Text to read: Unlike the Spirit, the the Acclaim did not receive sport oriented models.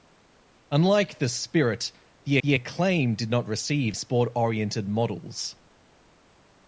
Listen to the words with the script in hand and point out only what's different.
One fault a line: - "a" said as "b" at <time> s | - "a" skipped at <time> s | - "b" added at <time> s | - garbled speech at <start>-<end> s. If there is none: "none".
none